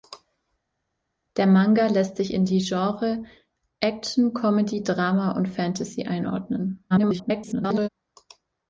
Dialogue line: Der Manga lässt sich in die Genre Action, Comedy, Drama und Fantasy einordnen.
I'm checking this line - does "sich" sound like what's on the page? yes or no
yes